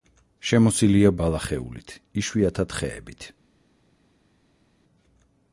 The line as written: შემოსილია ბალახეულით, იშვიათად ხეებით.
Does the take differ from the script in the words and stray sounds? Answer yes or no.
no